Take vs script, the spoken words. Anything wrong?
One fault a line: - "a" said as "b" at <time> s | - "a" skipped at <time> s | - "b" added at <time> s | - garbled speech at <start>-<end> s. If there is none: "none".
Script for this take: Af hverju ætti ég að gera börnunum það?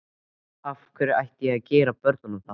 none